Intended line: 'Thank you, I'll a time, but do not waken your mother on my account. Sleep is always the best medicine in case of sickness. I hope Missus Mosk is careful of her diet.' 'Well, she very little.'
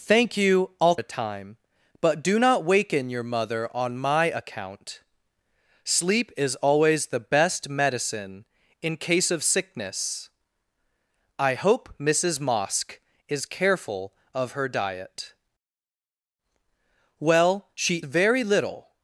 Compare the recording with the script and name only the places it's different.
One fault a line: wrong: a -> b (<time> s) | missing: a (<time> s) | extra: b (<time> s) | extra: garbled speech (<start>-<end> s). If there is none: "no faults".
no faults